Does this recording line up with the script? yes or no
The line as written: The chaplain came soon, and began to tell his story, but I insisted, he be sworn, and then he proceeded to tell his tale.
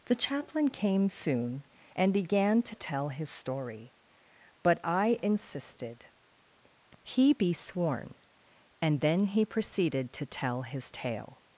yes